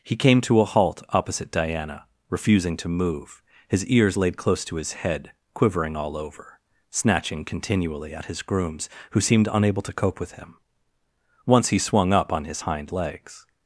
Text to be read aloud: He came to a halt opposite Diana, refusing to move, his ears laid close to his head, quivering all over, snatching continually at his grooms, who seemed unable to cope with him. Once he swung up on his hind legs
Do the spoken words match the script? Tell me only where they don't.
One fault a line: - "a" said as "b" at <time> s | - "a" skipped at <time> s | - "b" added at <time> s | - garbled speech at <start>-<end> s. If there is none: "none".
none